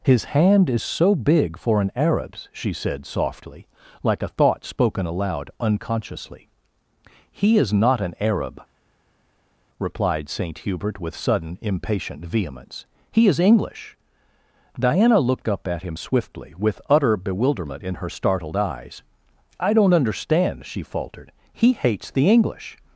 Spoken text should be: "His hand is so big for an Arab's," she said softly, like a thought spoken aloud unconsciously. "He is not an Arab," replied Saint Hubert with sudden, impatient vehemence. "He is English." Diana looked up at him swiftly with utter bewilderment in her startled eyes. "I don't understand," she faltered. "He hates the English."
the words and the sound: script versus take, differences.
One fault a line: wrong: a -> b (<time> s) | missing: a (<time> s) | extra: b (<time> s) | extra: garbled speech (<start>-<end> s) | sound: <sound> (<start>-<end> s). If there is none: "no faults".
no faults